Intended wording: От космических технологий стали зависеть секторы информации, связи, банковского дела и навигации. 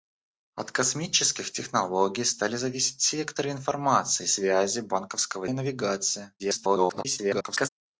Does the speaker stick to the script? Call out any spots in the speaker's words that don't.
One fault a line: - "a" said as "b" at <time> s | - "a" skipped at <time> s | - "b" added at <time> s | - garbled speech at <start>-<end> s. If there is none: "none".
- "дела" skipped at 5.5 s
- garbled speech at 6.4-7.7 s